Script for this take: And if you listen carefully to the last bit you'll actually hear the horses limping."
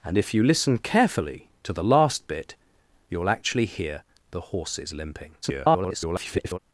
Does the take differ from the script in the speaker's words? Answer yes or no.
yes